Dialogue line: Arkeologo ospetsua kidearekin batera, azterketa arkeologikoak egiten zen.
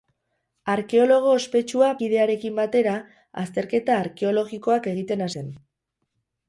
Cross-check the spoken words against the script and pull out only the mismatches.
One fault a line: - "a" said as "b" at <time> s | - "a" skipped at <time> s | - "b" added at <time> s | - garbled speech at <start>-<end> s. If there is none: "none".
none